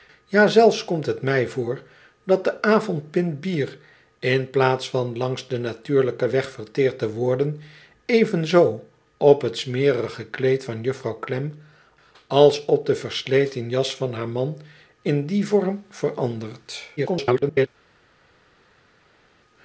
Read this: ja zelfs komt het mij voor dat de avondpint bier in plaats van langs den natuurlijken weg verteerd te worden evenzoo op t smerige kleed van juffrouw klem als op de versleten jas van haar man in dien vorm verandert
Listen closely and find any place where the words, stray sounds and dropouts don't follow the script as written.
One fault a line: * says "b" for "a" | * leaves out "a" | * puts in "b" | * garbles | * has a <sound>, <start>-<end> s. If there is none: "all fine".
* garbles